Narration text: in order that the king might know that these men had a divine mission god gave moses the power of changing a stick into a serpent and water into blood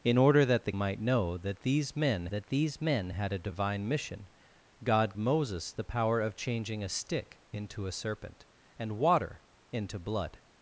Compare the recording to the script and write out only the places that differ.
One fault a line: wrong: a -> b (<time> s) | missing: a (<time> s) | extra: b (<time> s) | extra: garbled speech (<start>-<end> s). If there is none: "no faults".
missing: king (0.7 s)
extra: that these men (2.3 s)
missing: gave (5.1 s)